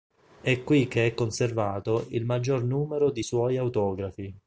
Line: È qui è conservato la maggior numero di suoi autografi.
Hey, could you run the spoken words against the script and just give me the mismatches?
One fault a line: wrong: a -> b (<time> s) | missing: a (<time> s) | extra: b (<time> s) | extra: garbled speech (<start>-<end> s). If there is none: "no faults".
extra: che (0.9 s)
wrong: la -> il (2.1 s)